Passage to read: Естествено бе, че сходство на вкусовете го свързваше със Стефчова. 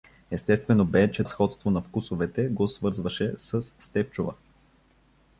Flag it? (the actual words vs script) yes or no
no